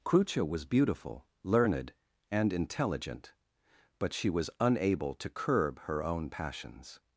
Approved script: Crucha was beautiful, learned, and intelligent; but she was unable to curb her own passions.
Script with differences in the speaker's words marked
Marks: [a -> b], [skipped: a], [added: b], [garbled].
Crucha was beautiful, learned, and intelligent; but she was unable to curb her own passions.